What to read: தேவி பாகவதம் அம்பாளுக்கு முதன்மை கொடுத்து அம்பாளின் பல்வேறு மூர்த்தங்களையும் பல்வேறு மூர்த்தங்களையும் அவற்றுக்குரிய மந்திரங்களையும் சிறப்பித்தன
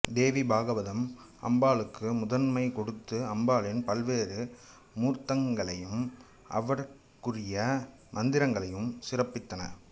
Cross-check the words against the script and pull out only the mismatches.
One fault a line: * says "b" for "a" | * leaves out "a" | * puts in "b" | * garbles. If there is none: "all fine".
* leaves out "பல்வேறு மூர்த்தங்களையும்"